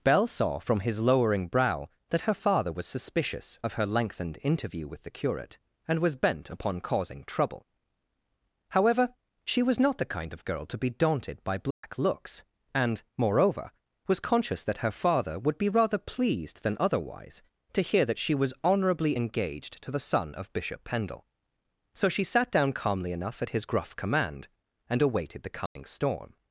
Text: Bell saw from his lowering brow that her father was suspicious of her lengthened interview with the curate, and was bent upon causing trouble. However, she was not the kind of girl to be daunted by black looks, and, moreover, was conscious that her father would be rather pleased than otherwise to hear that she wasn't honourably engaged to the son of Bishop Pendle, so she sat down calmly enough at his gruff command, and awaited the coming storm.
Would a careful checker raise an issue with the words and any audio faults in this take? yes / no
yes